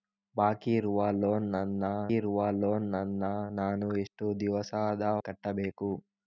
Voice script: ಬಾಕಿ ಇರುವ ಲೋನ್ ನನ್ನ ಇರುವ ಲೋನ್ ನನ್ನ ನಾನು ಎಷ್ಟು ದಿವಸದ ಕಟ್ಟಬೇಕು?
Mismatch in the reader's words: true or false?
false